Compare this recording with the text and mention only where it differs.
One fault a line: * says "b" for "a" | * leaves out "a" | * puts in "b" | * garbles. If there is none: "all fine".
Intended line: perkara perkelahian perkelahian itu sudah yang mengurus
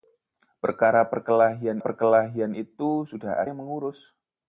all fine